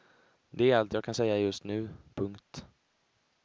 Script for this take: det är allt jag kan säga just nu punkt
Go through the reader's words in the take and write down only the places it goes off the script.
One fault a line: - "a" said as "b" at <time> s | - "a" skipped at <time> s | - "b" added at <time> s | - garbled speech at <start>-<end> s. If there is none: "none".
none